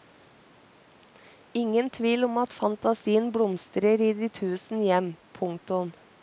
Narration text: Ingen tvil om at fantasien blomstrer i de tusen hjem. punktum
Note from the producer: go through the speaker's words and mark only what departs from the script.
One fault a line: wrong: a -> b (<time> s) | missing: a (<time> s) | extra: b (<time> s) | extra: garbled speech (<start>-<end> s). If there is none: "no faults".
no faults